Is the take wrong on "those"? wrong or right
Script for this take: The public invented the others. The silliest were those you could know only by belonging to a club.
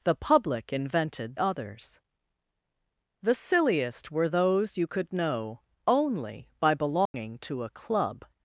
right